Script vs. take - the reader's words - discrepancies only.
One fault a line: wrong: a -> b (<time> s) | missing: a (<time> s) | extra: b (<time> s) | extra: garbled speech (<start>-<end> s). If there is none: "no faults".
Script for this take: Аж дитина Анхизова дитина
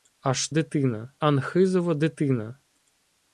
no faults